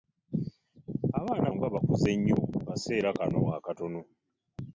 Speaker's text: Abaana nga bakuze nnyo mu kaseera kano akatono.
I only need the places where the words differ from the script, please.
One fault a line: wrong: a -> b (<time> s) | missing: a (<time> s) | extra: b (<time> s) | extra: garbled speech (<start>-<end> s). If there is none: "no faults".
no faults